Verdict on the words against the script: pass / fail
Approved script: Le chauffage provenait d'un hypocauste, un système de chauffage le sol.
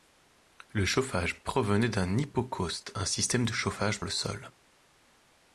pass